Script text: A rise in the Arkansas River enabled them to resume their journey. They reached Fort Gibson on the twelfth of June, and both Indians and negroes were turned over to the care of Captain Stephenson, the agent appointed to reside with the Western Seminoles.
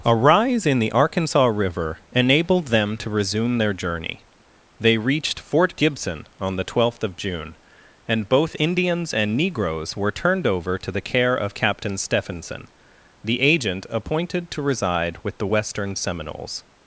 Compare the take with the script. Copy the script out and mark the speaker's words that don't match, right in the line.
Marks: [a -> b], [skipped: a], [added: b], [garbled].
A rise in the Arkansas River enabled them to resume their journey. They reached Fort Gibson on the twelfth of June, and both Indians and negroes were turned over to the care of Captain Stephenson, the agent appointed to reside with the Western Seminoles.